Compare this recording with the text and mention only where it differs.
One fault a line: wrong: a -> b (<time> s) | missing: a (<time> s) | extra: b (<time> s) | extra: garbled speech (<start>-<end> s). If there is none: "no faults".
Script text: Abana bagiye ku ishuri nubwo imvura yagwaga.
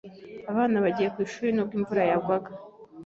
no faults